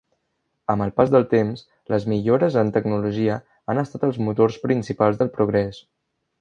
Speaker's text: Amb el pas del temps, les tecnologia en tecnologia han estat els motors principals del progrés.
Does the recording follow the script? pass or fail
fail